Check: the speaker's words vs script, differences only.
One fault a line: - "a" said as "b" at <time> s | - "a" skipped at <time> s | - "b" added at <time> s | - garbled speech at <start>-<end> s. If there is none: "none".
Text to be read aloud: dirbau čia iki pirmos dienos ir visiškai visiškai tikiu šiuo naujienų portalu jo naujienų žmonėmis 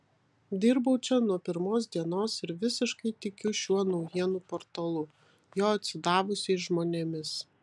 - "iki" said as "nuo" at 1.2 s
- "visiškai" skipped at 3.1 s
- "naujienų" said as "atsidavusiais" at 5.8 s